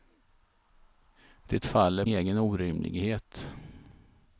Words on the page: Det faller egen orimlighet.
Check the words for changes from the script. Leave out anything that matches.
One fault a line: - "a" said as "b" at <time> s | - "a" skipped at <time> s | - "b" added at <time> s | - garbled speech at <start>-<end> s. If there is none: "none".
none